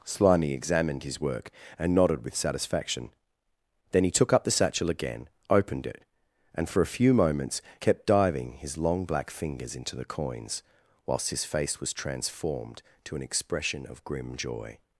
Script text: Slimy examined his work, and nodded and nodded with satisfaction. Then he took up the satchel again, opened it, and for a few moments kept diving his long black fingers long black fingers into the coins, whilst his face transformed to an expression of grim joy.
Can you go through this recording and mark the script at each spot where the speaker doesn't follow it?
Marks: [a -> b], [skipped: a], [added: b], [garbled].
Slimy examined his work, and nodded [skipped: and nodded] with satisfaction. Then he took up the satchel again, opened it, and for a few moments kept diving his long black fingers [skipped: long black fingers] into the coins, whilst his face [added: was] transformed to an expression of grim joy.